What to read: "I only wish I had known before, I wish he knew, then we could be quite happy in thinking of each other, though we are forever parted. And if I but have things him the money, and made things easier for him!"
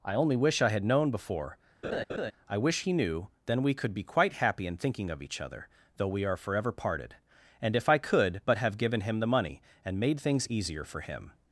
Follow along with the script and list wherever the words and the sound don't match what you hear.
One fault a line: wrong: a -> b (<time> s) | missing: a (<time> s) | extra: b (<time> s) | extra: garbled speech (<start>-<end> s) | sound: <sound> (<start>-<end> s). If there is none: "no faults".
sound: laugh (1.8-2.3 s)
extra: could (8.0 s)
wrong: things -> given (8.8 s)